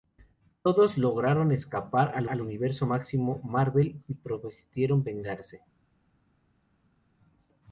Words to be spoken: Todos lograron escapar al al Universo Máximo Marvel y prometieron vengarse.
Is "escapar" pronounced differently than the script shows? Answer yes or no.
no